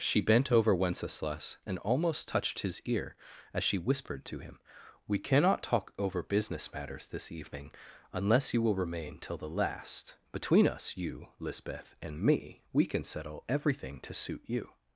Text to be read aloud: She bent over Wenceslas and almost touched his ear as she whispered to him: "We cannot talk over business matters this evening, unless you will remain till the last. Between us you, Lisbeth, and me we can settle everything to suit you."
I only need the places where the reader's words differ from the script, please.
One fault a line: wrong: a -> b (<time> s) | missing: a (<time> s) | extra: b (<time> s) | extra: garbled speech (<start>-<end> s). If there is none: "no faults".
no faults